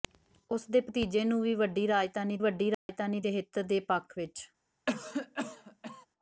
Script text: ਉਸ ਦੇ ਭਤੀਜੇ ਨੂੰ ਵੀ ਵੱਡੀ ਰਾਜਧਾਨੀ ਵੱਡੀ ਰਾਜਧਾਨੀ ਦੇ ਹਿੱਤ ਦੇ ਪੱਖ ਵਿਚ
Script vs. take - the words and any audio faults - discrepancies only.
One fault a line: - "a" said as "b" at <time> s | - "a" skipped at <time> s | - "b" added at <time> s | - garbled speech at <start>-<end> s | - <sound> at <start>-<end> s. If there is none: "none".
- dropout at 2.7-2.9 s
- cough at 4.9-6.1 s